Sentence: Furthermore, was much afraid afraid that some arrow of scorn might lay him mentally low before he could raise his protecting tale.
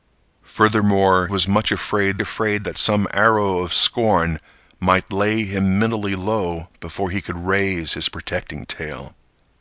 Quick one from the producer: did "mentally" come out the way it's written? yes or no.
yes